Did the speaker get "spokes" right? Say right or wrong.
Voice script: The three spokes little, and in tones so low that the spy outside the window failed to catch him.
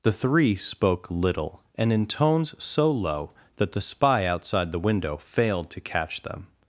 wrong